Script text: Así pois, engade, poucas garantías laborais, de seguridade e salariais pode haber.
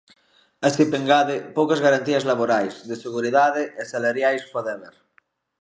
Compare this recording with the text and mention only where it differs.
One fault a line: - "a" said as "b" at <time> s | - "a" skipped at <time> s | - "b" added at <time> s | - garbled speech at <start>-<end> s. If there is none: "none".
- "pois" skipped at 0.8 s